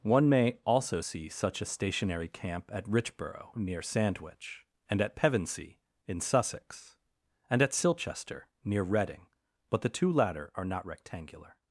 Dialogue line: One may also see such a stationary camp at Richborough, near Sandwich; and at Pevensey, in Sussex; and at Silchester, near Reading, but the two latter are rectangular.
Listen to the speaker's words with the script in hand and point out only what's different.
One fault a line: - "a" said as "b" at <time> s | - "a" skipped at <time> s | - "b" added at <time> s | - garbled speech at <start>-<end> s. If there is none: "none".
- "not" added at 10.6 s